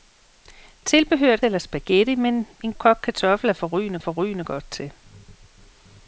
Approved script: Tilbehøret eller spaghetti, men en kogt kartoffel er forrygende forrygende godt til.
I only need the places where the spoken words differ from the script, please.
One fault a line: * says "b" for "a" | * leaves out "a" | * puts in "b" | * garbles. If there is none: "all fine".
all fine